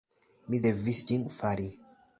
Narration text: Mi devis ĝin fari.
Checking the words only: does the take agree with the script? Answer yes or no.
yes